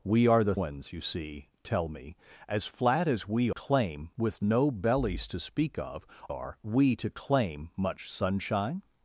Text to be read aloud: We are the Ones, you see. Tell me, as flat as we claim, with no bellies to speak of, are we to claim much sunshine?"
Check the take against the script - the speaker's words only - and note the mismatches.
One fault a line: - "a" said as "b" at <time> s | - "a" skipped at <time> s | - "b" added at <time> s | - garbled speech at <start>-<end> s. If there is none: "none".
none